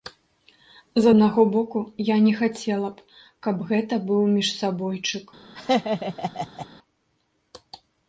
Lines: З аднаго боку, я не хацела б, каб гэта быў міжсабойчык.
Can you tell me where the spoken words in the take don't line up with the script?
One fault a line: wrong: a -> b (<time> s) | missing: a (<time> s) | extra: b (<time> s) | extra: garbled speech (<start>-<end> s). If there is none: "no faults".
no faults